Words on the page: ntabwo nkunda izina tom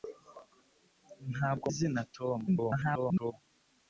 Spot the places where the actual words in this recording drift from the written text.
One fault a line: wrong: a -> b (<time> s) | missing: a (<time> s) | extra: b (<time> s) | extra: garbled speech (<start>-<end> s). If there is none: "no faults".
missing: nkunda (1.7 s)
extra: garbled speech (2.5-3.3 s)